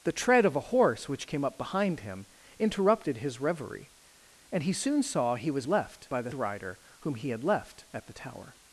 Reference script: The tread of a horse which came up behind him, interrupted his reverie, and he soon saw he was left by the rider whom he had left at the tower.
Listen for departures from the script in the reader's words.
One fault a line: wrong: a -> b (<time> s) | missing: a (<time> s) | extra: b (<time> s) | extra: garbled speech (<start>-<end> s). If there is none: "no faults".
no faults